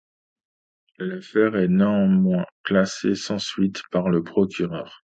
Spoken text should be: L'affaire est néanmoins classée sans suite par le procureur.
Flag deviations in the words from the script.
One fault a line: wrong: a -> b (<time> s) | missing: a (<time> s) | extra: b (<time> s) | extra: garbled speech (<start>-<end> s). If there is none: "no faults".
no faults